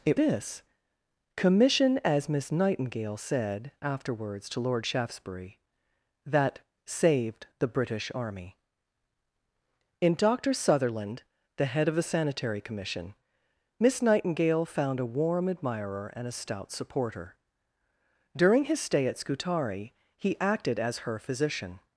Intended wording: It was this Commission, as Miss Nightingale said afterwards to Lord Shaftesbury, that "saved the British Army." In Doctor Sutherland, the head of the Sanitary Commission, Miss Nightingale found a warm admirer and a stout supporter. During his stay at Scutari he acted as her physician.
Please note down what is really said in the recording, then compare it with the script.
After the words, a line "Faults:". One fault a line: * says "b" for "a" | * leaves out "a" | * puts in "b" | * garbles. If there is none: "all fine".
It this Commission, as Miss Nightingale said afterwards to Lord Shaftesbury, that "saved the British Army." In Doctor Sutherland, the head of the Sanitary Commission, Miss Nightingale found a warm admirer and a stout supporter. During his stay at Scutari he acted as her physician.
Faults:
* leaves out "was"